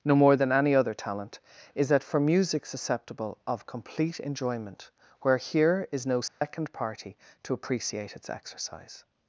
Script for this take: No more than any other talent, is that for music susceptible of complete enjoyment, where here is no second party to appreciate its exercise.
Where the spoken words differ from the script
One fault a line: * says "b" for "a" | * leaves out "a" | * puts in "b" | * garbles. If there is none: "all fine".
all fine